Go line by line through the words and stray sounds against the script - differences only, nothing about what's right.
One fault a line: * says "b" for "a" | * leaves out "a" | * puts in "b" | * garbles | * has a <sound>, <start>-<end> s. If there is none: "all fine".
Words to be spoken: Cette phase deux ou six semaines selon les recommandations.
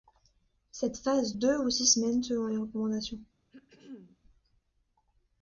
* has a throat clearing, 3.5-4.2 s